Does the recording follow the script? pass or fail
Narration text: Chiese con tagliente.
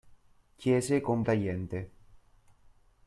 pass